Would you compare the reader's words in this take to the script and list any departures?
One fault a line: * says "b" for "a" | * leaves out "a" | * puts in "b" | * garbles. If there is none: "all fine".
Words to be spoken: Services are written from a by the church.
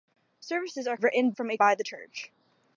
all fine